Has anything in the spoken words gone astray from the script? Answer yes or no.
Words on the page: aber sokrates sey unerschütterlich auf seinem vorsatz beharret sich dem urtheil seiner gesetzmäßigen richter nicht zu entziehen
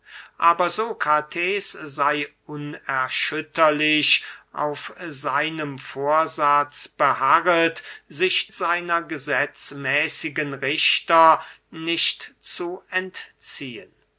yes